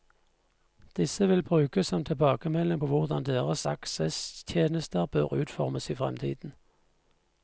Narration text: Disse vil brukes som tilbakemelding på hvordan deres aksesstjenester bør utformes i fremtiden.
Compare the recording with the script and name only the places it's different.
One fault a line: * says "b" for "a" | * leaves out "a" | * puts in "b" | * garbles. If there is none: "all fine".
all fine